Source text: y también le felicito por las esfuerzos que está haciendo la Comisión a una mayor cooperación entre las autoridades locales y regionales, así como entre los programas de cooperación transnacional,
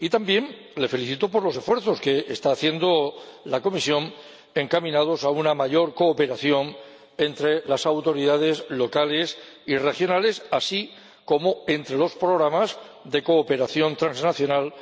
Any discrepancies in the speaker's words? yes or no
yes